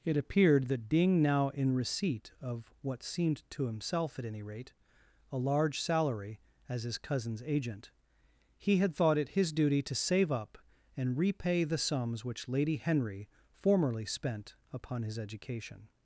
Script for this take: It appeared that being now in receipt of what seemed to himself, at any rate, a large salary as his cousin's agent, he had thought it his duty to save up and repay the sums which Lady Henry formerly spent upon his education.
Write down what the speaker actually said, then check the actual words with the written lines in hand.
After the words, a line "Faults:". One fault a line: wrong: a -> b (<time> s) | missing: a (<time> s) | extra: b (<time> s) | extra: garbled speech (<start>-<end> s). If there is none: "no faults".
It appeared that being now in receipt of what seemed to himself, at any rate, a large salary as his cousin's agent, he had thought it his duty to save up and repay the sums which Lady Henry formerly spent upon his education.
Faults:
no faults